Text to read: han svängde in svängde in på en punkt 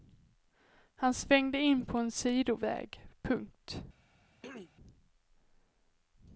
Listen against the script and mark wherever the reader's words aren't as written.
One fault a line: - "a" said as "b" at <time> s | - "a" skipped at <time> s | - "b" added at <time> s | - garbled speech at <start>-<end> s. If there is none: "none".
- "svängde in" skipped at 1.9 s
- "sidoväg" added at 2.1 s